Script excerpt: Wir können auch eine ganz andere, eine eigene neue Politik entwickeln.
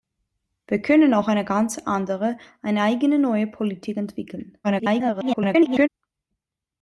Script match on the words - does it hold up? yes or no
no